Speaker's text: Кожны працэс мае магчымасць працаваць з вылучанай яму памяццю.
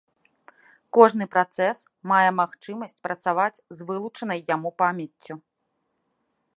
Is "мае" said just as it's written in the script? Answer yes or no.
yes